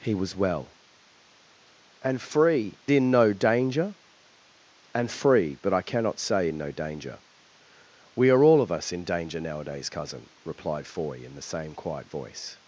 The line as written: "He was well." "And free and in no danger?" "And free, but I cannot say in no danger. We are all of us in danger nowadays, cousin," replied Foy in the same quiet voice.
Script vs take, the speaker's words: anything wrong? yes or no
yes